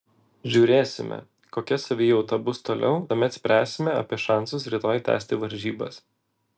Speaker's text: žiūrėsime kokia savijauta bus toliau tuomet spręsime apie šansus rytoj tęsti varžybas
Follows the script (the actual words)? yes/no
yes